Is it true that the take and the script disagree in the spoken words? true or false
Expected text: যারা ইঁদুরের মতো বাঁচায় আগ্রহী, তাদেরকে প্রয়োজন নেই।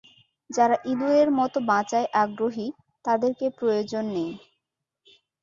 false